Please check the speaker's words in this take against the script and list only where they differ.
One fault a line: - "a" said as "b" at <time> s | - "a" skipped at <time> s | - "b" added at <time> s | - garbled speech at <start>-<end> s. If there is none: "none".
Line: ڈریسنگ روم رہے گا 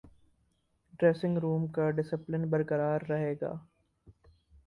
- "کا ڈسپلن برقرار" added at 1.7 s